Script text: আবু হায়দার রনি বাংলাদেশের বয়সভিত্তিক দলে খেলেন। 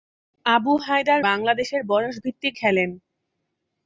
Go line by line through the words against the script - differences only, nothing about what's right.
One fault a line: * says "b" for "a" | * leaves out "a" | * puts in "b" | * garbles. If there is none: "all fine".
* leaves out "রনি"
* leaves out "দলে"